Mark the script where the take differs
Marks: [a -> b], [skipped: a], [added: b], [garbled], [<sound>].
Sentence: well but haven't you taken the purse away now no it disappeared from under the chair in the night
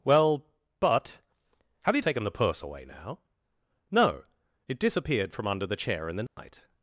well but [haven't -> have] you taken the purse away now no it disappeared from under the chair in the night [dropout]